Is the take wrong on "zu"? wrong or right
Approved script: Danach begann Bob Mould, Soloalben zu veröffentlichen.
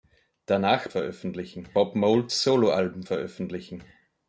wrong